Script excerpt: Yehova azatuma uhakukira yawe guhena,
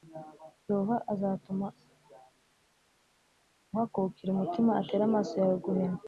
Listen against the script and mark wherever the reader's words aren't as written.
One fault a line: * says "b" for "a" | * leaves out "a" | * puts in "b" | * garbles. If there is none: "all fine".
* puts in "umutima atere amaso"